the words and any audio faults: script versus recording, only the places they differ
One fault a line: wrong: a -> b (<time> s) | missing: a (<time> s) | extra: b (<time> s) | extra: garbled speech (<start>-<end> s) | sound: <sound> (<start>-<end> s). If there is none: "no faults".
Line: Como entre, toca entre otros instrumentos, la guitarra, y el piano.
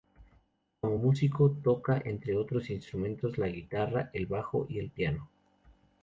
wrong: entre -> músico (0.9 s)
extra: el bajo (4.1 s)